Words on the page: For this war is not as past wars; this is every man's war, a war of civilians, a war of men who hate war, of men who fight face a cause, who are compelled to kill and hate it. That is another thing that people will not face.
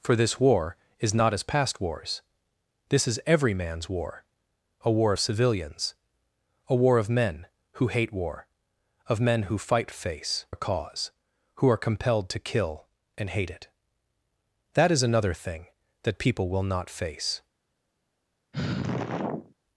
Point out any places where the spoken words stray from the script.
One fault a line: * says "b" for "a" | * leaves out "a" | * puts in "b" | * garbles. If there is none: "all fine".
all fine